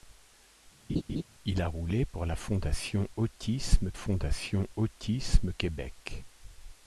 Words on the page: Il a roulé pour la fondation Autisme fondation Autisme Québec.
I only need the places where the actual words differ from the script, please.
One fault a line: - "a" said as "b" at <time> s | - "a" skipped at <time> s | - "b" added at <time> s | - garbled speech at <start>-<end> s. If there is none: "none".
none